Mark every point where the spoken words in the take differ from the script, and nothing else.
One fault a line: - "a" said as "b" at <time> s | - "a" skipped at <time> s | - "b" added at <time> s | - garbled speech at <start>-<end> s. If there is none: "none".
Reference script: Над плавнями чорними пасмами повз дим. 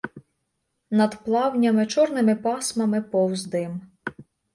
none